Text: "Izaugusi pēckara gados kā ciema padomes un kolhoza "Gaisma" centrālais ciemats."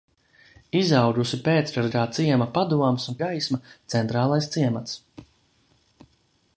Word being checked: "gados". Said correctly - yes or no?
no